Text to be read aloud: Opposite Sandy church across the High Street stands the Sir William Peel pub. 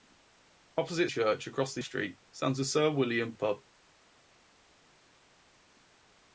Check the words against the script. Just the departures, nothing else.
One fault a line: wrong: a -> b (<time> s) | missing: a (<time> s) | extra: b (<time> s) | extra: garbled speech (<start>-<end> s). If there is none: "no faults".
missing: Sandy (1.1 s)
missing: High (1.8 s)
missing: Peel (3.3 s)